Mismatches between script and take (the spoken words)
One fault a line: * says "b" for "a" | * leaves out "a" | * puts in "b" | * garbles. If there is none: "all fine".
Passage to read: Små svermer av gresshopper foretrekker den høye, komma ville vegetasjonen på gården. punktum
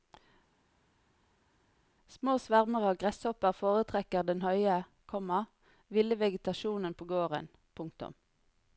all fine